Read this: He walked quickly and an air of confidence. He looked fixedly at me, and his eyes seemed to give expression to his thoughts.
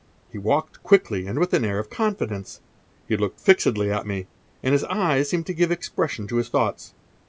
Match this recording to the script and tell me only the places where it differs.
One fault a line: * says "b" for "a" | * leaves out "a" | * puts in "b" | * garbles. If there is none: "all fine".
* puts in "with"